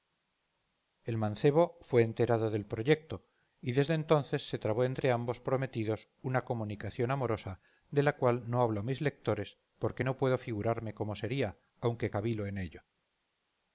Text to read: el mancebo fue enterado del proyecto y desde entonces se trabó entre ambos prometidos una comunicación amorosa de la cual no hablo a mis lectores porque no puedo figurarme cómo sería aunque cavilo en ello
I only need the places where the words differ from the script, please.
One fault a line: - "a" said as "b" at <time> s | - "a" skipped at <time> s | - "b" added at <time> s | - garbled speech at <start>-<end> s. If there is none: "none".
none